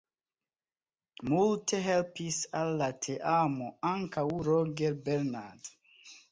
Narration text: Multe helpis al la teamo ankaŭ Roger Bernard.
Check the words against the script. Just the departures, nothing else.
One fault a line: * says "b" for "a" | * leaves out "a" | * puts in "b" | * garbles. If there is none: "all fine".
all fine